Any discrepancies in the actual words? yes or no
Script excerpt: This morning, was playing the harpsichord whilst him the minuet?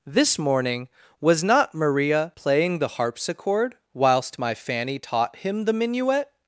yes